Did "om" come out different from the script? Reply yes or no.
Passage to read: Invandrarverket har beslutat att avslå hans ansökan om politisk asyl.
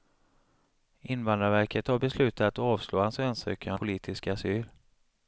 yes